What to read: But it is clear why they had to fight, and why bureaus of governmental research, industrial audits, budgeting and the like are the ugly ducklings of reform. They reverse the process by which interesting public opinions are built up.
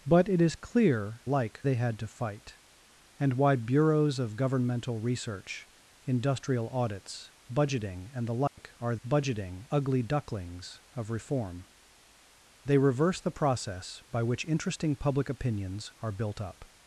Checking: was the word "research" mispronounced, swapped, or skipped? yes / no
no